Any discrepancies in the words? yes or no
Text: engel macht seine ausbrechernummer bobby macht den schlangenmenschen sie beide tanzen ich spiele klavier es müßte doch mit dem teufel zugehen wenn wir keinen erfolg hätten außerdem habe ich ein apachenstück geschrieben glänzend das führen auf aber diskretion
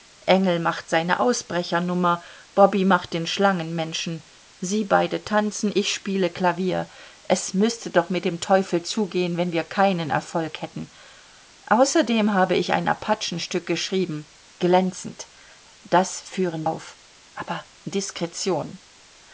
no